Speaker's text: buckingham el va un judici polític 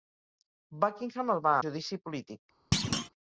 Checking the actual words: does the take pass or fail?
pass